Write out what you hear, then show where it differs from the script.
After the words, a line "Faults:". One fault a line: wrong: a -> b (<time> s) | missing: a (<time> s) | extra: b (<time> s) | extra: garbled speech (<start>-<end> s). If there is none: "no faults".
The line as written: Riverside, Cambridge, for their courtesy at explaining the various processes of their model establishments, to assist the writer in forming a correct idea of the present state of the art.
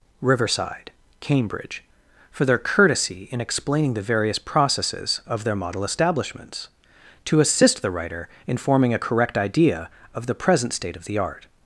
Riverside, Cambridge, for their courtesy in explaining the various processes of their model establishments, to assist the writer in forming a correct idea of the present state of the art.
Faults:
wrong: at -> in (3.3 s)